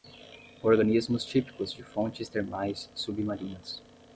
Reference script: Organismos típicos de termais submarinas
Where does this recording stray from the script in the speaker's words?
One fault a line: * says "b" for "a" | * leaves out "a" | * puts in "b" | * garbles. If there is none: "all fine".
* puts in "fontes"